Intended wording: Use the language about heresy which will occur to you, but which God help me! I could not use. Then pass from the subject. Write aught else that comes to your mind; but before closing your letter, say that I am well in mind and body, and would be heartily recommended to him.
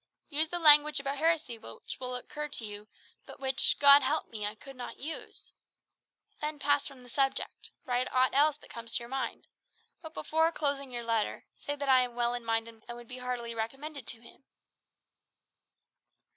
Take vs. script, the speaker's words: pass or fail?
fail